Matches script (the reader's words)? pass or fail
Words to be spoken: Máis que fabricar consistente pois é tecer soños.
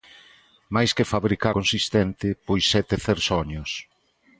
pass